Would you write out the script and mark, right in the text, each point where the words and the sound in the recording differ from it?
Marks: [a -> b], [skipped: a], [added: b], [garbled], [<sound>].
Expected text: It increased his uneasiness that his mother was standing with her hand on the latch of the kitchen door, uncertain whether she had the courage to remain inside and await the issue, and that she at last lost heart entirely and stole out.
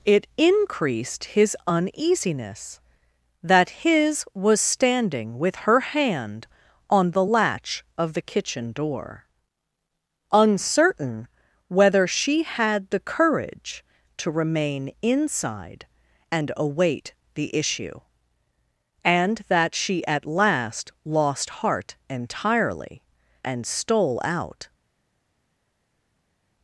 It increased his uneasiness that his [skipped: mother] was standing with her hand on the latch of the kitchen door, uncertain whether she had the courage to remain inside and await the issue, and that she at last lost heart entirely and stole out.